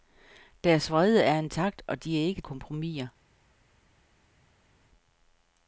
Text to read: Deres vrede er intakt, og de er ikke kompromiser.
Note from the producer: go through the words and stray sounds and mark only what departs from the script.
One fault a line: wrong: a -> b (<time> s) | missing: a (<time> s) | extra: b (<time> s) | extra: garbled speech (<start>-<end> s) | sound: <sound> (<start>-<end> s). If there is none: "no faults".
no faults